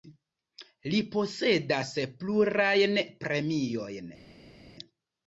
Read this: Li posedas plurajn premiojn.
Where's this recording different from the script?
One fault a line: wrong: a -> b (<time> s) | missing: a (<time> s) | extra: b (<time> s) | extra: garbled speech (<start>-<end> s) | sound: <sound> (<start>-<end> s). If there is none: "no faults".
no faults